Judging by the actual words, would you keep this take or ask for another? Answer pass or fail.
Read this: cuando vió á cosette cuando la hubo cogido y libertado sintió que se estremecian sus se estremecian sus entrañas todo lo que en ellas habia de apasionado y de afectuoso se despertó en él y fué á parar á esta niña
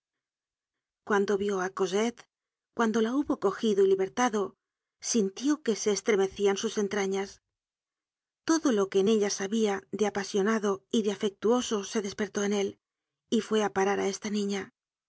fail